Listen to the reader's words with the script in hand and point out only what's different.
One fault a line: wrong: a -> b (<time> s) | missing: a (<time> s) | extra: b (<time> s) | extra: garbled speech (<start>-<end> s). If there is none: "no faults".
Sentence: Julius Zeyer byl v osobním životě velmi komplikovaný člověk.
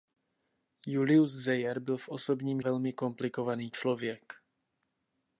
missing: životě (2.6 s)